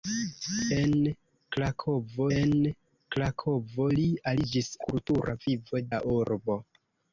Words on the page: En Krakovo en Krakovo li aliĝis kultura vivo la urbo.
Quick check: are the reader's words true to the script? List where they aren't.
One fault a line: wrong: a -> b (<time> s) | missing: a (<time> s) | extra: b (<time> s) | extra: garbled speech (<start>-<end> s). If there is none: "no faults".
no faults